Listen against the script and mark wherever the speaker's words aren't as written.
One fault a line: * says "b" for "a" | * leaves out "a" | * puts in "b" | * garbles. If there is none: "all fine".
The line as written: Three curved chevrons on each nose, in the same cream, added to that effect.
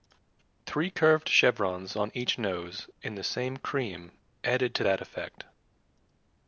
all fine